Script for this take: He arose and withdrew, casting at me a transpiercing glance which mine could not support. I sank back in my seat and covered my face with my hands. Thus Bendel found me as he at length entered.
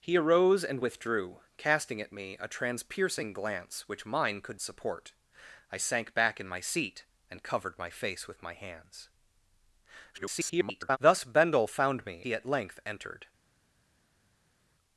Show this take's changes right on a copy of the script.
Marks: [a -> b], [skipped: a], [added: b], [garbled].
He arose and withdrew, casting at me a transpiercing glance which mine could [skipped: not] support. I sank back in my seat and covered my face with my hands. [garbled] Thus Bendel found me [skipped: as] he at length entered.